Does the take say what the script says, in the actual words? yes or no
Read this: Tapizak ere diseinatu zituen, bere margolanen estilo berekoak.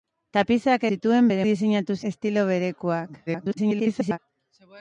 no